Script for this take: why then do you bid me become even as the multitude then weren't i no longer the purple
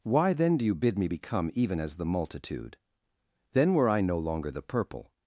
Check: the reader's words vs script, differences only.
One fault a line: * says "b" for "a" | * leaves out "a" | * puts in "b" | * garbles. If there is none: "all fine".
* says "were" for "weren't"